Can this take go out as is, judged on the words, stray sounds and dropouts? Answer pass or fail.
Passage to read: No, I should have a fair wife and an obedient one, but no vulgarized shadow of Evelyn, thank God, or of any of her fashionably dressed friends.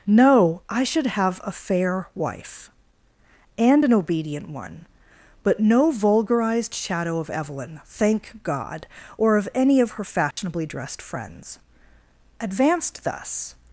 fail